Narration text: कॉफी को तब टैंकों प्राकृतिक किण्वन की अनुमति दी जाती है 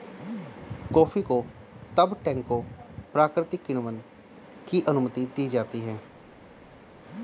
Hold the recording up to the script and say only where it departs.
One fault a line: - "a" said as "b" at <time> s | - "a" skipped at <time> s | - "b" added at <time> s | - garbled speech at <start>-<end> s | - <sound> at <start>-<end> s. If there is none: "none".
none